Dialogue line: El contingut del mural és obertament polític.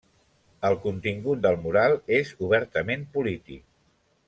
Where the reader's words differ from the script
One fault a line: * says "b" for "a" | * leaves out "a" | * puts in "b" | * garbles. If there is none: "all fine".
all fine